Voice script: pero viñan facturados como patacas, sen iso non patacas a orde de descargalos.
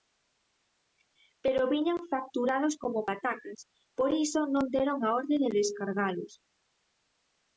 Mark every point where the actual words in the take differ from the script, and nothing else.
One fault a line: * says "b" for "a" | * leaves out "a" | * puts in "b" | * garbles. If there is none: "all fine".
* says "por" for "sen"
* says "deron" for "patacas"